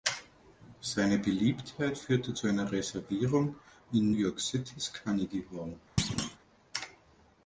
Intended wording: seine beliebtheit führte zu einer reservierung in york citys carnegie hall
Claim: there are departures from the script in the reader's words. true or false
false